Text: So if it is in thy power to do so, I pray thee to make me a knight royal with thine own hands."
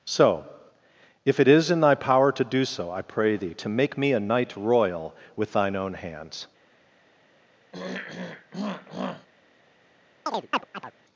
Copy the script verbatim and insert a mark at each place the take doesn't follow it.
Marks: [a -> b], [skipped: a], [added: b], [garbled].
So if it is in thy power to do so, I pray thee to make me a knight royal with thine own hands."